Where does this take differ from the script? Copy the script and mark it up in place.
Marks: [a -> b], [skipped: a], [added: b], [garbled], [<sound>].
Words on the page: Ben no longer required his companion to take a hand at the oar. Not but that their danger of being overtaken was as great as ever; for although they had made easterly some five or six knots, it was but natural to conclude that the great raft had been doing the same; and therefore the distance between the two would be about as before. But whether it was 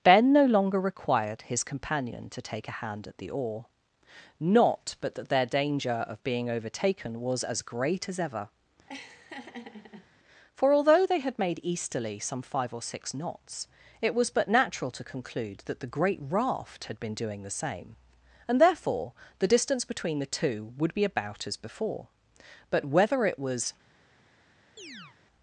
Ben no longer required his companion to take a hand at the oar. Not but that their danger of being overtaken was as great as ever; [laugh] for although they had made easterly some five or six knots, it was but natural to conclude that the great raft had been doing the same; and therefore the distance between the two would be about as before. But whether it was [chirp]